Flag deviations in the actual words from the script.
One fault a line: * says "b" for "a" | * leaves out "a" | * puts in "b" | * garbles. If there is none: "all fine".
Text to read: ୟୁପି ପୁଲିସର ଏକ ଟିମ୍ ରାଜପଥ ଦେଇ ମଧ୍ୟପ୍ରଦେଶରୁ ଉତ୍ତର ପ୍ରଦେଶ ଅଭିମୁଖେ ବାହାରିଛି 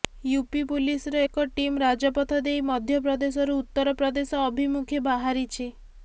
all fine